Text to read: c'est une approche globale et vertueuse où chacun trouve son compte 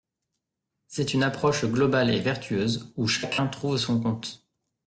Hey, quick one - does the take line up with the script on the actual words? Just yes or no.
yes